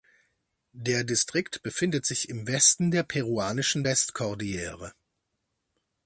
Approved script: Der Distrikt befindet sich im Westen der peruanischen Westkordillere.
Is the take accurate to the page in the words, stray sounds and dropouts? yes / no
yes